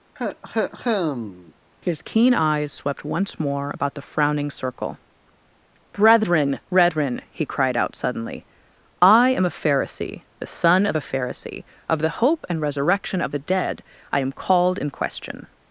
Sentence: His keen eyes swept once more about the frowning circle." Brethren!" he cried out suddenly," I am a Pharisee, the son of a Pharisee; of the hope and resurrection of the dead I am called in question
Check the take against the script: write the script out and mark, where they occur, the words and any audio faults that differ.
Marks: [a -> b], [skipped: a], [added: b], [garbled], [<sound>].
[cough] His keen eyes swept once more about the frowning circle." Brethren!" [added: brethren] he cried out suddenly," I am a Pharisee, the son of a Pharisee; of the hope and resurrection of the dead I am called in question